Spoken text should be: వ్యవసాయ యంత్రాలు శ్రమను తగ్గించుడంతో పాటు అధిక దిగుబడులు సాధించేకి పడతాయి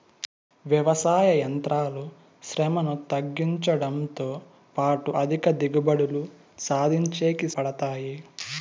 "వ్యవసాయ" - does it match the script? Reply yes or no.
yes